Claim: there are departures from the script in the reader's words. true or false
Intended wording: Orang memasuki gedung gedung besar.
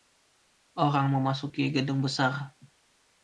true